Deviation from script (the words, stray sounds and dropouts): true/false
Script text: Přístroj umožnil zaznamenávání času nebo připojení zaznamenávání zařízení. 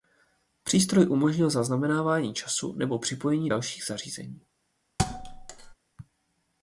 true